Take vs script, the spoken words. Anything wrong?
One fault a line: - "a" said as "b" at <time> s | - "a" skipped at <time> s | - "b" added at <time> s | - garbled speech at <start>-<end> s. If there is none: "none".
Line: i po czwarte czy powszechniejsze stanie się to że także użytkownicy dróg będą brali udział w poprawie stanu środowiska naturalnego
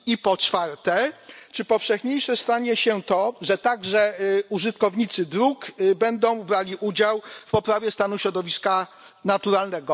none